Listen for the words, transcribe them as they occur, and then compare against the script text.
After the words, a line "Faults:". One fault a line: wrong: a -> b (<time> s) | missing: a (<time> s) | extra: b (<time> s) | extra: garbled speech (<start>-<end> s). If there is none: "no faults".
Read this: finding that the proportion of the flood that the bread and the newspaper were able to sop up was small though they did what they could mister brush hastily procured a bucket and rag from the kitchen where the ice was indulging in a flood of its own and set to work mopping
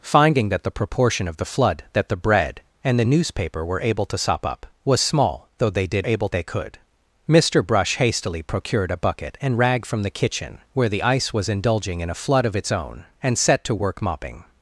finding that the proportion of the flood that the bread and the newspaper were able to sop up was small though they did able they could mister brush hastily procured a bucket and rag from the kitchen where the ice was indulging in a flood of its own and set to work mopping
Faults:
wrong: what -> able (6.0 s)